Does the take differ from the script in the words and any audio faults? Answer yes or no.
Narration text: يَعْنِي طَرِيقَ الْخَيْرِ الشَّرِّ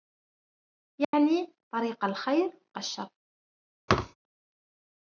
yes